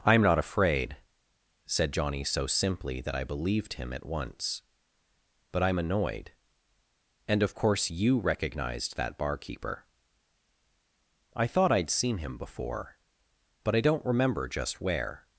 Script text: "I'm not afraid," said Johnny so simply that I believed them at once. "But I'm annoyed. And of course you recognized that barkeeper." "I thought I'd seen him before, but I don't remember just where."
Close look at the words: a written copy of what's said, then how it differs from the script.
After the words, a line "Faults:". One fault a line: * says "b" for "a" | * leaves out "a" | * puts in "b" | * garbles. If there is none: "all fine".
"I'm not afraid," said Johnny so simply that I believed him at once. "But I'm annoyed. And of course you recognized that barkeeper." "I thought I'd seen him before, but I don't remember just where."
Faults:
* says "him" for "them"